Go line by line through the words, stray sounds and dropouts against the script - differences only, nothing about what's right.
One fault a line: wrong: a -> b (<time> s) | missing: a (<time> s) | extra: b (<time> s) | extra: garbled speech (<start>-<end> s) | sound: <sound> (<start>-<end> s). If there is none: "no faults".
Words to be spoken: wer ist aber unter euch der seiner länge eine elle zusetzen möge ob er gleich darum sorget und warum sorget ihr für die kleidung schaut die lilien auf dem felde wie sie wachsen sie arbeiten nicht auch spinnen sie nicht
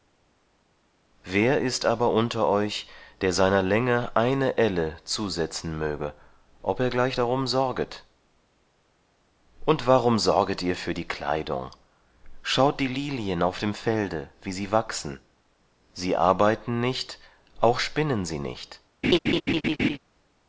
sound: laugh (19.0-20.0 s)